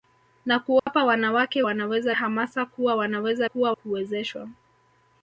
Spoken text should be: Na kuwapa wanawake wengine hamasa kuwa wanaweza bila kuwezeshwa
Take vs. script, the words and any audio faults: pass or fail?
fail